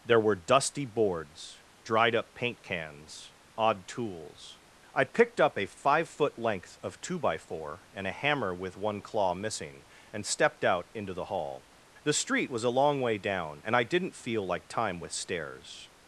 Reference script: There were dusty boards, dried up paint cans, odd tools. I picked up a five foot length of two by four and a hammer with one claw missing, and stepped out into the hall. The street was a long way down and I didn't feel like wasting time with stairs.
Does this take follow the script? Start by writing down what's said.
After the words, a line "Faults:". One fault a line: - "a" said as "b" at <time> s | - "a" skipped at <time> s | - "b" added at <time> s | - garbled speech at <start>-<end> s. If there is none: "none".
There were dusty boards, dried up paint cans, odd tools. I picked up a five foot length of two by four and a hammer with one claw missing, and stepped out into the hall. The street was a long way down and I didn't feel like time with stairs.
Faults:
- "wasting" skipped at 14.7 s